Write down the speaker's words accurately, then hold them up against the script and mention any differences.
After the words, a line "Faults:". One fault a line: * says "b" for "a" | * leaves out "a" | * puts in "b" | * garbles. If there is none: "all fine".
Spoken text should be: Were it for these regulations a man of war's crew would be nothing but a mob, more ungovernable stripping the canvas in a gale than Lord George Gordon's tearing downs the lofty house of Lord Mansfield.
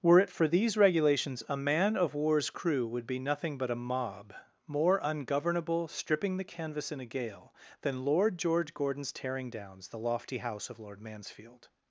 Were it for these regulations a man of war's crew would be nothing but a mob, more ungovernable stripping the canvas in a gale than Lord George Gordon's tearing downs the lofty house of Lord Mansfield.
Faults:
all fine